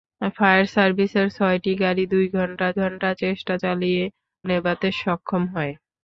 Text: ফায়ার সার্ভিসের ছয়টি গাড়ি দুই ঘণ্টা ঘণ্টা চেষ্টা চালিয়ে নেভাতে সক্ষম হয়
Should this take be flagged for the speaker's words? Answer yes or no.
no